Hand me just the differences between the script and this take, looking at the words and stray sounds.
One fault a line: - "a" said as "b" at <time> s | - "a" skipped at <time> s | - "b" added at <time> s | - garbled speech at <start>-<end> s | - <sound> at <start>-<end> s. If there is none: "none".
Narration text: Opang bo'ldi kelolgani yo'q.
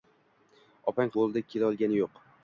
none